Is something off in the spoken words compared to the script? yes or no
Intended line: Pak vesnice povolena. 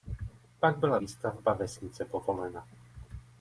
yes